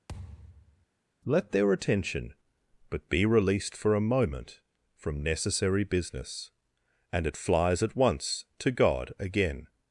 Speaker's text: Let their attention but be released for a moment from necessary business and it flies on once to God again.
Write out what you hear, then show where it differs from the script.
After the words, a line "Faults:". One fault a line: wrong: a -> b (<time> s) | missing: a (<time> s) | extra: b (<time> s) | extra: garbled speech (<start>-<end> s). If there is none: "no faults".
Let their attention but be released for a moment from necessary business and it flies at once to God again.
Faults:
wrong: on -> at (7.8 s)